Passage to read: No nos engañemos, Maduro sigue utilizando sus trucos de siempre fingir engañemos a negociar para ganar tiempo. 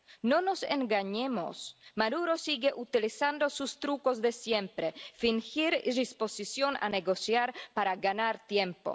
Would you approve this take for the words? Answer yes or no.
no